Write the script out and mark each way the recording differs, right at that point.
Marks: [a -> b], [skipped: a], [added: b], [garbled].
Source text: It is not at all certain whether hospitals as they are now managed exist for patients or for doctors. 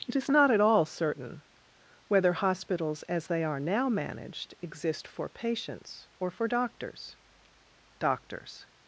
It is not at all certain whether hospitals as they are now managed exist for patients or for doctors. [added: doctors]